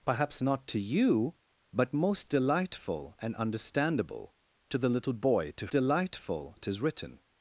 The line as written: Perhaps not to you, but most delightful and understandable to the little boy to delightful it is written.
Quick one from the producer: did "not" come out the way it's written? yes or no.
yes